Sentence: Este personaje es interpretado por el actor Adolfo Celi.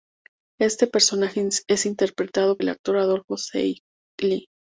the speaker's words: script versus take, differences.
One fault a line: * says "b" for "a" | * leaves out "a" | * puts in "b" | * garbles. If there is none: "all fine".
* leaves out "por"